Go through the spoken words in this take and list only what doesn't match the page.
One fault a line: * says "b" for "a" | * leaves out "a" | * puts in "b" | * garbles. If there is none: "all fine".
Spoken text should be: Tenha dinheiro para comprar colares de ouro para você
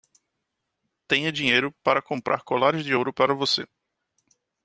all fine